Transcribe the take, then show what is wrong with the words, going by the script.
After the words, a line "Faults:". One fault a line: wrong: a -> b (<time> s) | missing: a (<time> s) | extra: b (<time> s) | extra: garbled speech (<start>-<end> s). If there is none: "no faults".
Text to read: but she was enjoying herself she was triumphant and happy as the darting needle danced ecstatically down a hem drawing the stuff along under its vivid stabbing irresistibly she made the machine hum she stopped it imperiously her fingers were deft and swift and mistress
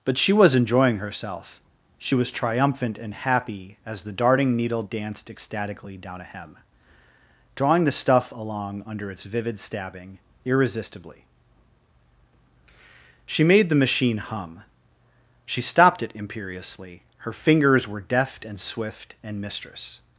but she was enjoying herself she was triumphant and happy as the darting needle danced ecstatically down a hem drawing the stuff along under its vivid stabbing irresistibly she made the machine hum she stopped it imperiously her fingers were deft and swift and mistress
Faults:
no faults